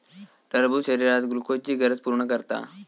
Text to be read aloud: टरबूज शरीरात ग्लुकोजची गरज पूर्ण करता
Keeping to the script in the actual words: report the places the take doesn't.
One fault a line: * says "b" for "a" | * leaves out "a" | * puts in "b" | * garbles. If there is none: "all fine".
all fine